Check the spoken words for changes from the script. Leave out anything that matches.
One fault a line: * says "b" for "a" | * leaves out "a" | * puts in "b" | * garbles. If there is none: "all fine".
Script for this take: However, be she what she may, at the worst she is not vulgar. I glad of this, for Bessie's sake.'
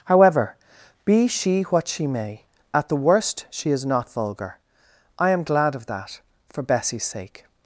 * puts in "am"
* says "that" for "this"